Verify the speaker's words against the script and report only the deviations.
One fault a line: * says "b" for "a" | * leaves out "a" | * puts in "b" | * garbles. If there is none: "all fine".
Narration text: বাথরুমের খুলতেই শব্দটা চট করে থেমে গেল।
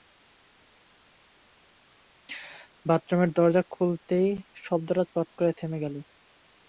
* puts in "দরজা"